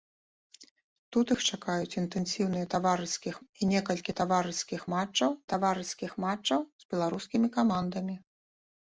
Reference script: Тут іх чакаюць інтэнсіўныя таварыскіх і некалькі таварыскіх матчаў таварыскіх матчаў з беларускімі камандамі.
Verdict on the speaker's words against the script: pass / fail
pass